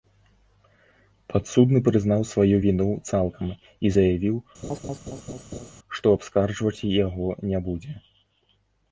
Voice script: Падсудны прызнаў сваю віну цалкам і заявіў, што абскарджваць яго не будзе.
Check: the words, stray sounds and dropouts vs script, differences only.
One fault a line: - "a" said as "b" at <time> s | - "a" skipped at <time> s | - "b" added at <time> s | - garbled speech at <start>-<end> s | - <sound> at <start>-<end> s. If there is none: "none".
- laugh at 4.6-5.7 s